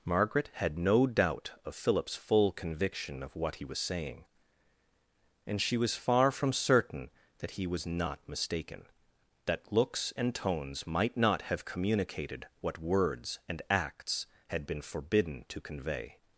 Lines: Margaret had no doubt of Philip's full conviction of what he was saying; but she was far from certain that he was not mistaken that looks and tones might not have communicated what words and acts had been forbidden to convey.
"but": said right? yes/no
no